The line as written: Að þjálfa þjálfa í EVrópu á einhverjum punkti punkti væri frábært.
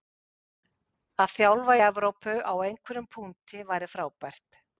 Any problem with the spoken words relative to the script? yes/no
yes